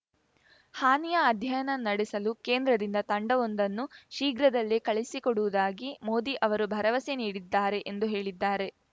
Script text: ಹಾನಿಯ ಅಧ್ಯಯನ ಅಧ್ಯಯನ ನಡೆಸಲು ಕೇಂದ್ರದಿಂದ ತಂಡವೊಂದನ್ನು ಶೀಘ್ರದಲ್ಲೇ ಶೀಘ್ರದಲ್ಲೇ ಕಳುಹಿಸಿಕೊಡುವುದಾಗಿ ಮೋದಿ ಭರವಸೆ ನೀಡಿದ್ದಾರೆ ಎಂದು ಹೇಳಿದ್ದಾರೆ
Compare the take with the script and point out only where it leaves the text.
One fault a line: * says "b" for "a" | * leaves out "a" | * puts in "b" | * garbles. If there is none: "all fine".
* leaves out "ಅಧ್ಯಯನ"
* leaves out "ಶೀಘ್ರದಲ್ಲೇ"
* puts in "ಅವರು"